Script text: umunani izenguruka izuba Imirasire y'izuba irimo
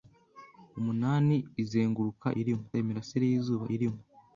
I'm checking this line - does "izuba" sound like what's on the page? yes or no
no